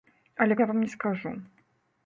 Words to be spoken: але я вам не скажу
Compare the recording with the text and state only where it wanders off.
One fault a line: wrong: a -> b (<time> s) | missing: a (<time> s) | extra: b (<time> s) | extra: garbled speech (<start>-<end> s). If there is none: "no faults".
no faults